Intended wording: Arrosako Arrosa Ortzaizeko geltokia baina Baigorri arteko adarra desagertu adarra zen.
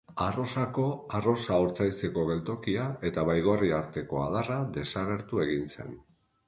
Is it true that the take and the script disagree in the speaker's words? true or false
true